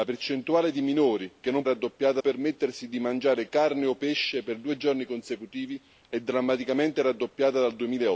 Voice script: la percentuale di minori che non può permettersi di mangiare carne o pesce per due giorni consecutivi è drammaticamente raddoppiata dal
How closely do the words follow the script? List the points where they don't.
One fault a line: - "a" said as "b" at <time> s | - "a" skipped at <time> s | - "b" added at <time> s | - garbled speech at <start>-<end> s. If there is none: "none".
- "può" said as "raddoppiata" at 1.6 s